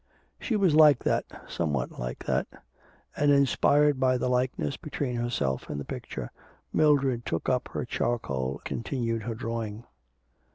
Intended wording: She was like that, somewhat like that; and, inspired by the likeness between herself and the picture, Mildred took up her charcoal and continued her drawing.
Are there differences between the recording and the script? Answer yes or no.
yes